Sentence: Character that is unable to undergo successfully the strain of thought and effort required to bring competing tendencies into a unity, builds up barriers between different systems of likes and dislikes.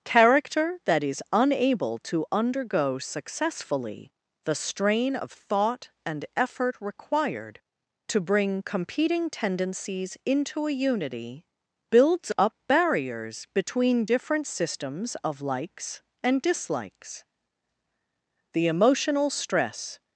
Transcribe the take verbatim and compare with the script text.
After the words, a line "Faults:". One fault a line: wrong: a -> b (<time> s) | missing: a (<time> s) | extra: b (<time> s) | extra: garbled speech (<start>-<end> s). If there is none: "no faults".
Character that is unable to undergo successfully the strain of thought and effort required to bring competing tendencies into a unity, builds up barriers between different systems of likes and dislikes. The emotional stress
Faults:
extra: The emotional stress (18.5 s)